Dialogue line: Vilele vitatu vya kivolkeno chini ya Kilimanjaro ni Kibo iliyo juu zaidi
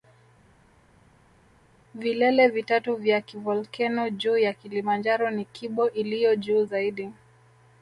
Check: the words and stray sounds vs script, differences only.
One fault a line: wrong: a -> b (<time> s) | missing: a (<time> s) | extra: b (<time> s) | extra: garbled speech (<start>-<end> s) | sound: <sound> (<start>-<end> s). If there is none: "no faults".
wrong: chini -> juu (4.1 s)